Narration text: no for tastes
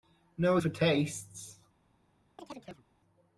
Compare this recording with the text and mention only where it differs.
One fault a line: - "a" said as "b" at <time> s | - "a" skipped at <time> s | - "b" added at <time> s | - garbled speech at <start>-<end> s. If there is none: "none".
none